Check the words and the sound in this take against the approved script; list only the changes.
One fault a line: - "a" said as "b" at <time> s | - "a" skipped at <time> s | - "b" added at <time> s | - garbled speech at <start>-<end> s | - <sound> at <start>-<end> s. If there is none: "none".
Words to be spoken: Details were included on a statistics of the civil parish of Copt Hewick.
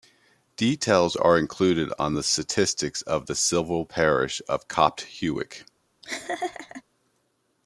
- "were" said as "are" at 1.1 s
- "a" said as "the" at 2.1 s
- laugh at 6.0-6.8 s